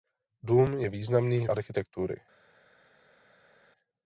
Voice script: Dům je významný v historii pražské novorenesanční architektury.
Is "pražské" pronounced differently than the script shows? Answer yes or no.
yes